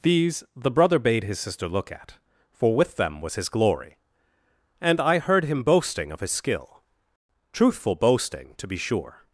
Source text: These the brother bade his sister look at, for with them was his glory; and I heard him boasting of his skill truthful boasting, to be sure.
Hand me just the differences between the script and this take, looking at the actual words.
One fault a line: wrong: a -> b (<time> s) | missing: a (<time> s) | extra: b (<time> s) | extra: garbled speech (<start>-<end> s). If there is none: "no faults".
no faults